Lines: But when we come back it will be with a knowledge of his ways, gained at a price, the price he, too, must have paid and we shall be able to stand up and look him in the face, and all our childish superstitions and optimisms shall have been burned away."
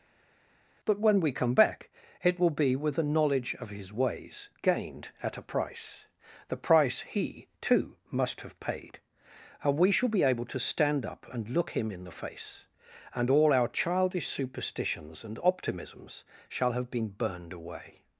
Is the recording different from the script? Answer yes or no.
no